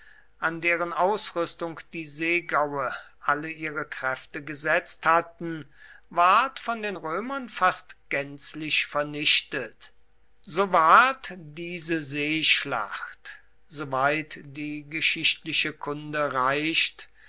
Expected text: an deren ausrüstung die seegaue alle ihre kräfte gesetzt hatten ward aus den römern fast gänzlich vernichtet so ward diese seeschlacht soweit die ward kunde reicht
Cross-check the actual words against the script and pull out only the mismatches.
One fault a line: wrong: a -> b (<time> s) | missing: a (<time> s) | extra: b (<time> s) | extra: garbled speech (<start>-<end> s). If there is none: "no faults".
wrong: aus -> von (6.6 s)
wrong: ward -> geschichtliche (14.9 s)